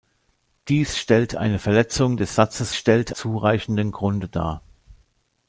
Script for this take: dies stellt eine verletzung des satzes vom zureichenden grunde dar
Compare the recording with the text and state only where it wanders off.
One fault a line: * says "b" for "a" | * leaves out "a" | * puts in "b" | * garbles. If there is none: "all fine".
* says "stellt" for "vom"